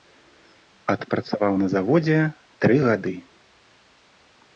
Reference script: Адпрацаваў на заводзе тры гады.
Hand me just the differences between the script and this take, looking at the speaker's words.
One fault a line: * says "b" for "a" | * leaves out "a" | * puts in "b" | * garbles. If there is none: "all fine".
all fine